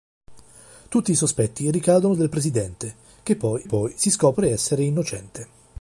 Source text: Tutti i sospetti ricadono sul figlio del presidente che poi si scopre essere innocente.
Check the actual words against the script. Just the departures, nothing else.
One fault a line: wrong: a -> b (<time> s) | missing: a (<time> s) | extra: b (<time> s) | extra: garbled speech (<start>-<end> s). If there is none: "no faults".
missing: sul figlio (2.1 s)
extra: poi (3.6 s)